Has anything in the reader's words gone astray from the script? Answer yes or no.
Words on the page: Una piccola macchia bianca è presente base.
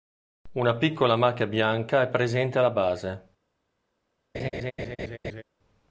yes